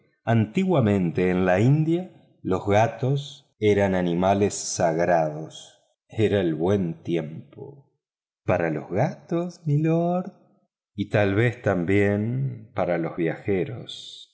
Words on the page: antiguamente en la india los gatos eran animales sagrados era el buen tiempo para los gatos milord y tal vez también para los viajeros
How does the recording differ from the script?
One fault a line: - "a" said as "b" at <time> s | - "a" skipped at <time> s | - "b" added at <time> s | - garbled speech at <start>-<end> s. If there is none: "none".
none